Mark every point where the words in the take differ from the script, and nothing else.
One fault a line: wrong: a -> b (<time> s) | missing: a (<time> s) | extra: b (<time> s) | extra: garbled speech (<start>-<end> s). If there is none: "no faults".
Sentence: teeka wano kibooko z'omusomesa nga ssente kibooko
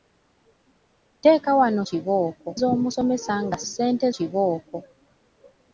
no faults